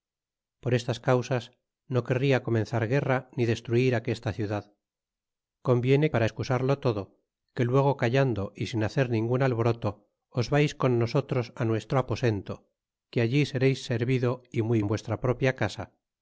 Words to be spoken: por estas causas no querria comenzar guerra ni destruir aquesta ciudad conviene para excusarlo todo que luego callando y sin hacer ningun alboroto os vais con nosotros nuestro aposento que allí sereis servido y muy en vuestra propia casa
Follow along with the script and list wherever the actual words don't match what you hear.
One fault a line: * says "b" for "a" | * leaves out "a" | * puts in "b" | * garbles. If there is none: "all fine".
all fine